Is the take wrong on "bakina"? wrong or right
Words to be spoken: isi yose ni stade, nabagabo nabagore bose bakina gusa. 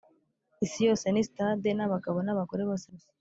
wrong